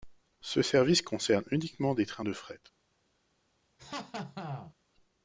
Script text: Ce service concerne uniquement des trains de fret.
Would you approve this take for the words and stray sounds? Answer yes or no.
no